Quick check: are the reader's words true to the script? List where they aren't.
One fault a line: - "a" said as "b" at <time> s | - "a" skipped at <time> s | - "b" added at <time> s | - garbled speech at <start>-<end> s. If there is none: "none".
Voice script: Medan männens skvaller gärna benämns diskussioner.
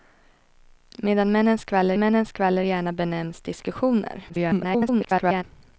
- "männens skvaller" added at 2.0 s
- garbled speech at 4.3-5.4 s